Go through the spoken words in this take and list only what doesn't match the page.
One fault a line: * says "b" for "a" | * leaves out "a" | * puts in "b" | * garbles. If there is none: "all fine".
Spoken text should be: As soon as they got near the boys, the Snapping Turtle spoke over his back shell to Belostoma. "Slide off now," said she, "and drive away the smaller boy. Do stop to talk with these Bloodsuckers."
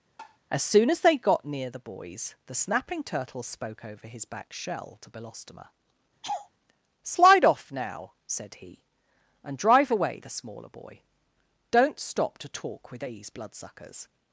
* says "he" for "she"
* says "Don't" for "Do"